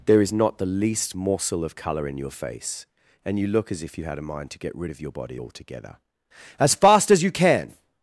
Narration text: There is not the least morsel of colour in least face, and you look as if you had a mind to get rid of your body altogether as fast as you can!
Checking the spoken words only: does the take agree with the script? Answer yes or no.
no